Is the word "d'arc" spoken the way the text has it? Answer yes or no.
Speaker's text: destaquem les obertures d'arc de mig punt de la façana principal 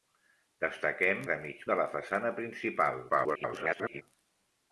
no